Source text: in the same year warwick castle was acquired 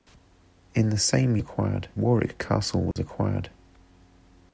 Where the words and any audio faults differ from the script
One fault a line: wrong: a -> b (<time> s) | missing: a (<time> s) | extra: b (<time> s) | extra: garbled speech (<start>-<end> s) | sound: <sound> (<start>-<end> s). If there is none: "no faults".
wrong: year -> acquired (1.4 s)
sound: dropout (2.9-3.0 s)